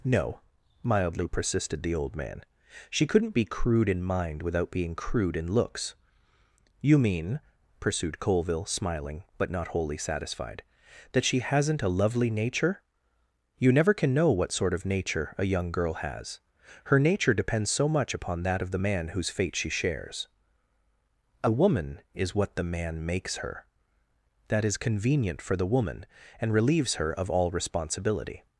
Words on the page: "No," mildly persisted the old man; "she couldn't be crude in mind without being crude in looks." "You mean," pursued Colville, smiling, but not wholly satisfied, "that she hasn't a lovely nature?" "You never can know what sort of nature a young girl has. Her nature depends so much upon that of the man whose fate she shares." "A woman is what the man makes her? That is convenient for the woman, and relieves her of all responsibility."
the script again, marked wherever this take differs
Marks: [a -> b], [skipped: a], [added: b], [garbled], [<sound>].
"No," mildly persisted the old man; "she couldn't be crude in mind without being crude in looks." "You mean," pursued Colville, smiling, but not wholly satisfied, "that she hasn't a lovely nature?" "You never can know what sort of nature a young girl has. Her nature depends so much upon that of the man whose fate she shares." "A woman is what the man makes her? That is convenient for the woman, and relieves her of all responsibility."